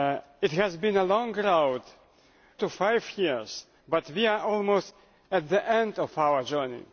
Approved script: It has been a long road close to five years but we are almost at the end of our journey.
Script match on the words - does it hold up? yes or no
no